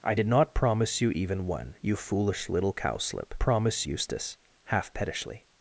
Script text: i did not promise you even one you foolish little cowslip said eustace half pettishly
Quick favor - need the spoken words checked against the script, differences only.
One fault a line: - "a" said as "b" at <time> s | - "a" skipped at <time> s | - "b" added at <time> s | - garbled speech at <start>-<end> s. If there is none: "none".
- "said" said as "promise" at 3.4 s